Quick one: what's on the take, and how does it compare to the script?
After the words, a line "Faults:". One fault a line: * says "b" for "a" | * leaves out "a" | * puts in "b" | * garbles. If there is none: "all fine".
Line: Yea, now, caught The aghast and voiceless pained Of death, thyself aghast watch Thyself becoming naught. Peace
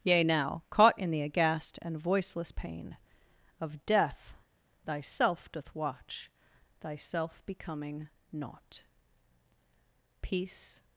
Yea, now, caught in The aghast and voiceless pain Of death, thyself doth watch Thyself becoming naught. Peace
Faults:
* puts in "in"
* says "pain" for "pained"
* says "doth" for "aghast"